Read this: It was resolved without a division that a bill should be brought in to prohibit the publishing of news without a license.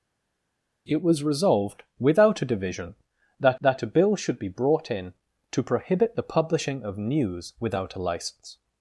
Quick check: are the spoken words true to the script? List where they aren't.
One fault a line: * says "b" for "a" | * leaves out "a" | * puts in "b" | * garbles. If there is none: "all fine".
* puts in "that"